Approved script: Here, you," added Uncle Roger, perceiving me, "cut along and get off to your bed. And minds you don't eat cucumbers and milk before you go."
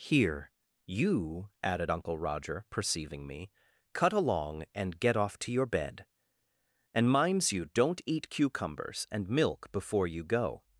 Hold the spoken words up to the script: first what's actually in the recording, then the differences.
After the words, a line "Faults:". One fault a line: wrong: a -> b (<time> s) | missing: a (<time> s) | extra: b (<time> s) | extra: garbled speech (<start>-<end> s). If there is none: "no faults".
Here, you," added Uncle Roger, perceiving me, "cut along and get off to your bed. And minds you don't eat cucumbers and milk before you go."
Faults:
no faults